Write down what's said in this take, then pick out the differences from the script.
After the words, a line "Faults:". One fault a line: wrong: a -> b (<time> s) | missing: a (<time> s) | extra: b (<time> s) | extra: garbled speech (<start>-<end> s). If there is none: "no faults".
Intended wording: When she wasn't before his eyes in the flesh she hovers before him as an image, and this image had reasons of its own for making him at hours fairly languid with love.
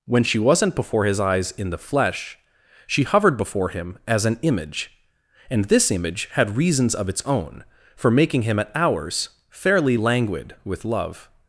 When she wasn't before his eyes in the flesh she hovered before him as an image, and this image had reasons of its own for making him at hours fairly languid with love.
Faults:
wrong: hovers -> hovered (3.0 s)